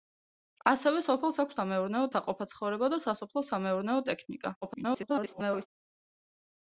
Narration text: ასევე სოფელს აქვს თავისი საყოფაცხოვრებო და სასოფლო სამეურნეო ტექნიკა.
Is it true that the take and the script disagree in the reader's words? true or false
true